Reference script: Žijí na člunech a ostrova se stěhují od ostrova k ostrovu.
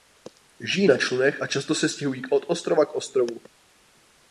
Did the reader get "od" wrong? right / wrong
right